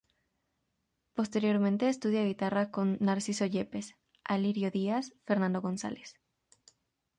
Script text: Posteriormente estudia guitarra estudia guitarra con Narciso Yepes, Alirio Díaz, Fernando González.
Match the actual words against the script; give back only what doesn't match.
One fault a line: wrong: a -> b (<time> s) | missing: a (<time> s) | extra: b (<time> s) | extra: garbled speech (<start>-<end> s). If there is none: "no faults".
missing: estudia guitarra (2.7 s)